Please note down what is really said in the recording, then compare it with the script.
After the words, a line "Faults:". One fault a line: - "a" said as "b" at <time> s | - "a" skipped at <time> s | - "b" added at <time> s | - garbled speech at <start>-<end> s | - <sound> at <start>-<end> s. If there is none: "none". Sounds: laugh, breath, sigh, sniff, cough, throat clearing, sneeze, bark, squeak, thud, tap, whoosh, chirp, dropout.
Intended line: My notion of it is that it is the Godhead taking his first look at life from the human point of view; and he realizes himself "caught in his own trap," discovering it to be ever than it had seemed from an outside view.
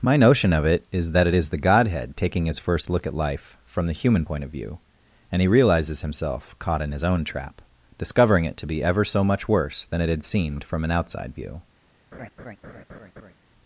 My notion of it is that it is the Godhead taking his first look at life from the human point of view; and he realizes himself "caught in his own trap," discovering it to be ever so much worse than it had seemed from an outside view.
Faults:
- "so much worse" added at 9.0 s
- laugh at 12.1-13.3 s